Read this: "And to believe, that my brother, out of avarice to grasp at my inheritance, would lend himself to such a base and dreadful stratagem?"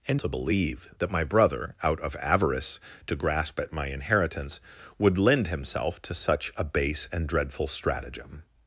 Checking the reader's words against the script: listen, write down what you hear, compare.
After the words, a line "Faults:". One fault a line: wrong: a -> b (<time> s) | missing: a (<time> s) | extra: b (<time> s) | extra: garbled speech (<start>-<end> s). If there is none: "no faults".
"And to believe, that my brother, out of avarice to grasp at my inheritance, would lend himself to such a base and dreadful stratagem?"
Faults:
no faults